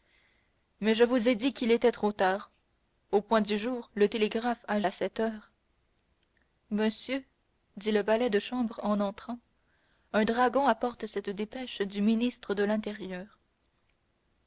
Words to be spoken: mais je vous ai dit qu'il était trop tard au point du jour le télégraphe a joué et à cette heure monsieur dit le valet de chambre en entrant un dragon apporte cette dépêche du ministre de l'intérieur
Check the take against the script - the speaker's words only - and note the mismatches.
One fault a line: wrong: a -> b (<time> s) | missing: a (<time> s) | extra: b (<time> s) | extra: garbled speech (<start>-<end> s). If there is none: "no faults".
missing: joué et (4.8 s)